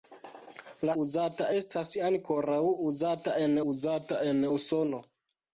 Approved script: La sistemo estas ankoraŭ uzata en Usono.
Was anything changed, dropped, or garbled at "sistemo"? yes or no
yes